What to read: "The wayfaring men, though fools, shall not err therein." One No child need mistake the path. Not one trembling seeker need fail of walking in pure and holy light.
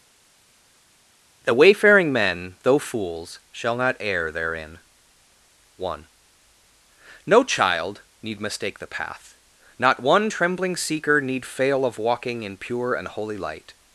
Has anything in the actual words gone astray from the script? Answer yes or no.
no